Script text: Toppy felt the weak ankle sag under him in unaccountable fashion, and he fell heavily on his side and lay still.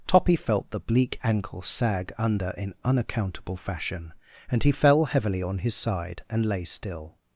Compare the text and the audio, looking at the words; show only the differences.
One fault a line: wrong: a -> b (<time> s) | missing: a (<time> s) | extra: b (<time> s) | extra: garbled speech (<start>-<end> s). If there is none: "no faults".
wrong: weak -> bleak (0.8 s)
missing: him (2.5 s)